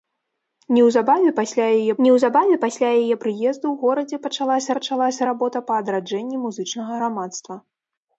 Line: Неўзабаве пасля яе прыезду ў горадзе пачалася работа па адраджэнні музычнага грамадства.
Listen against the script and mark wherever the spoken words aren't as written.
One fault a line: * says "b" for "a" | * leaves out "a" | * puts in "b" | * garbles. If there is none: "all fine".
* puts in "неўзабаве пасля яе"
* puts in "пачалася"